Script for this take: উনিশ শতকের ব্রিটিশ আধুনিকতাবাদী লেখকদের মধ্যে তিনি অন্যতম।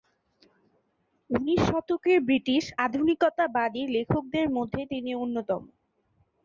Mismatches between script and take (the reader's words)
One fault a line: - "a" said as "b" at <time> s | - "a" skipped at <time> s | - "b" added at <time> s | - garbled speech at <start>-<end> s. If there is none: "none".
none